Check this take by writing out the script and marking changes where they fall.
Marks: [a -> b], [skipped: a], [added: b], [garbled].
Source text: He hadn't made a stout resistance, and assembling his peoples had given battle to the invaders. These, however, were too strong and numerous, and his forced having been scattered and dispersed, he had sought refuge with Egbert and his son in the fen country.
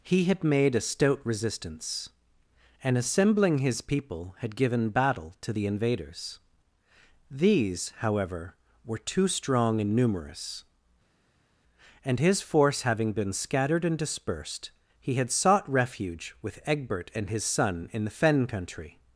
He [hadn't -> had] made a stout resistance, and assembling his [peoples -> people] had given battle to the invaders. These, however, were too strong and numerous, and his [forced -> force] having been scattered and dispersed, he had sought refuge with Egbert and his son in the fen country.